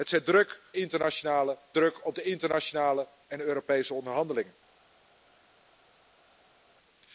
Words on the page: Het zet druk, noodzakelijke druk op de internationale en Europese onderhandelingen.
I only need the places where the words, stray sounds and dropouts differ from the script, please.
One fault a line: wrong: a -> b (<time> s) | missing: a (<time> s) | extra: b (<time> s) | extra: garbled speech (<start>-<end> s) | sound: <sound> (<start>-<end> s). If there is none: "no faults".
wrong: noodzakelijke -> internationale (0.7 s)